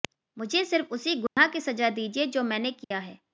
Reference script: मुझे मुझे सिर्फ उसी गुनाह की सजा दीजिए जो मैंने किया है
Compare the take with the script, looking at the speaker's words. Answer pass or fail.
fail